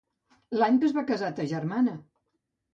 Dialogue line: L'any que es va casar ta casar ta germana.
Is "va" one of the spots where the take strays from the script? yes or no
no